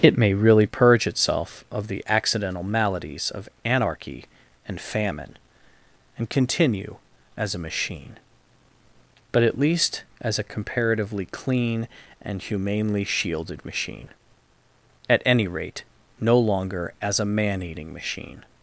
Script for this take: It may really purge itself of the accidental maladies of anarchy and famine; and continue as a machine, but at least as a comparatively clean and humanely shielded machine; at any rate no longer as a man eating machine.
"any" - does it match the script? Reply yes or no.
yes